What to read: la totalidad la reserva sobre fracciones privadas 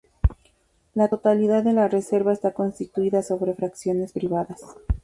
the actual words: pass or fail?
fail